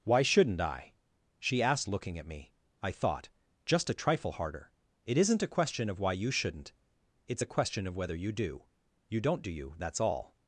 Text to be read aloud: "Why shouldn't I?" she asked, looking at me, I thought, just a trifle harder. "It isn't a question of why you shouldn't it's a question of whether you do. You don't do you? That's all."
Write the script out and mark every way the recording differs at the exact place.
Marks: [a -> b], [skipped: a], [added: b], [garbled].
"Why shouldn't I?" she asked, looking at me, I thought, just a trifle harder. "It isn't a question of why you shouldn't it's a question of whether you do. You don't do you? That's all."